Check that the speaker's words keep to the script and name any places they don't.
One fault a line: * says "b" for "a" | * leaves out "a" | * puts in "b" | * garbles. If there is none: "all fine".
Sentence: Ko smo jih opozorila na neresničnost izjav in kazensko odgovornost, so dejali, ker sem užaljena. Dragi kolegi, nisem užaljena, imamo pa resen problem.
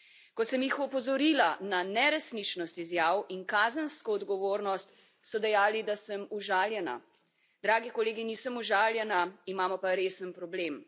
* says "sem" for "smo"
* says "da" for "ker"